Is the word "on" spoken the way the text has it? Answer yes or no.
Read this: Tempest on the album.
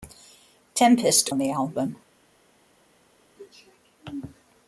yes